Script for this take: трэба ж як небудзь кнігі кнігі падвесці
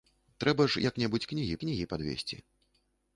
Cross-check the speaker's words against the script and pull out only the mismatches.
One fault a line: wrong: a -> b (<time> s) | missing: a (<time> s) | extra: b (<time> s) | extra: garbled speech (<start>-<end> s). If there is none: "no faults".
no faults